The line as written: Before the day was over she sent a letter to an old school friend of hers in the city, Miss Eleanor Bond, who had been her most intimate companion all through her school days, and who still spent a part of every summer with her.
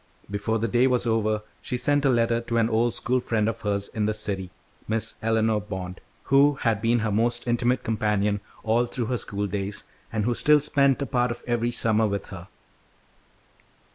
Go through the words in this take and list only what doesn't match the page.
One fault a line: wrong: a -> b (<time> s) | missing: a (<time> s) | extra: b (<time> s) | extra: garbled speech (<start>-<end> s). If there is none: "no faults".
no faults